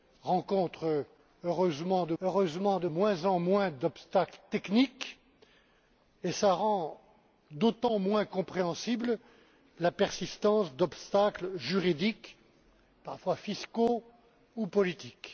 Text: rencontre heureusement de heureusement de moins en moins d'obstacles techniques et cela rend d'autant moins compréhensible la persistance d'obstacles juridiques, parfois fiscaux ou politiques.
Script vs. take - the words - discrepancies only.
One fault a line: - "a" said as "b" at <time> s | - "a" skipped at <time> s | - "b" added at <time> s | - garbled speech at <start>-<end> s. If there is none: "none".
none